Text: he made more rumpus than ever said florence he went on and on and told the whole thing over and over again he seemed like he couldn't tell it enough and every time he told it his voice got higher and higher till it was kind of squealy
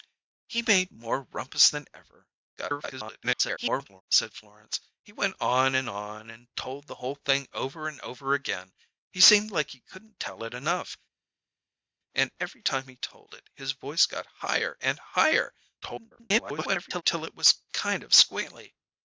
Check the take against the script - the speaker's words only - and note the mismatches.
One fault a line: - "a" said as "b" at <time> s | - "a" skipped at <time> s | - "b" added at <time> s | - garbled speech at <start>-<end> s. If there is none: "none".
- garbled speech at 2.6-4.0 s
- garbled speech at 15.8-17.0 s